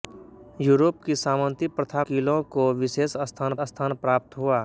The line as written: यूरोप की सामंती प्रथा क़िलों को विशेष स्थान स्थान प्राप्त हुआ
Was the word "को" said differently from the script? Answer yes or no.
no